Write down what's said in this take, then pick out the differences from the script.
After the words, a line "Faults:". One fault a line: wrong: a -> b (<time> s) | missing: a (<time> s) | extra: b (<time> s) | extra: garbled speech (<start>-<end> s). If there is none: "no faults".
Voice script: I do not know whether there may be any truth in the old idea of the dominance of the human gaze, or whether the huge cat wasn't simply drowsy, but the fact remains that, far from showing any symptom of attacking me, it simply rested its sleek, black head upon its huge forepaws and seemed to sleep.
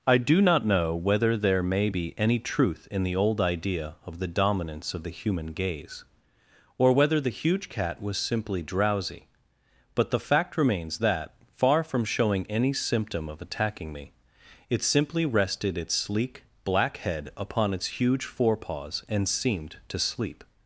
I do not know whether there may be any truth in the old idea of the dominance of the human gaze, or whether the huge cat was simply drowsy, but the fact remains that, far from showing any symptom of attacking me, it simply rested its sleek, black head upon its huge forepaws and seemed to sleep.
Faults:
wrong: wasn't -> was (8.0 s)